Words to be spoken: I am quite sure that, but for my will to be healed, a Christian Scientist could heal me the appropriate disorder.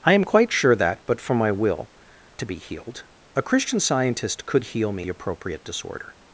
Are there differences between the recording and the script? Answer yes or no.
no